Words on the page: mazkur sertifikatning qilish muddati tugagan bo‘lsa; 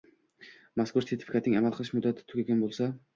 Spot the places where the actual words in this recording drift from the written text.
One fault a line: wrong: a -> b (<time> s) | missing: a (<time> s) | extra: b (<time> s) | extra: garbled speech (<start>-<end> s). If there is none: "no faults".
extra: amal (1.6 s)